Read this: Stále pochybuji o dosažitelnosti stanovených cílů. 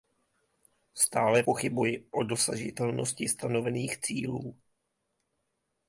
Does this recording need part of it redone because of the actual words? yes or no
no